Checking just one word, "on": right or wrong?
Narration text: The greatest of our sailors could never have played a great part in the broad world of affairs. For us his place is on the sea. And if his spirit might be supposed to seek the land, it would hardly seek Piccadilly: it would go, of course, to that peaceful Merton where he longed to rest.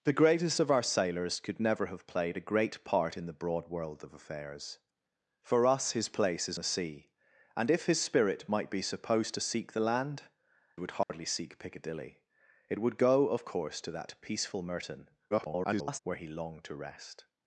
wrong